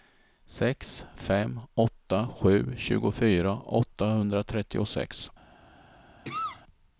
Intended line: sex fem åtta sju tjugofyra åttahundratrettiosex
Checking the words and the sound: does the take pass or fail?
fail